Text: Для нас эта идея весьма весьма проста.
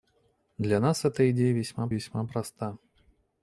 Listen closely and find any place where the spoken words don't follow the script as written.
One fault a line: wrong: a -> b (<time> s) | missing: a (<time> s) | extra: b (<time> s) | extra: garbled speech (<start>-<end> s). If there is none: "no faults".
no faults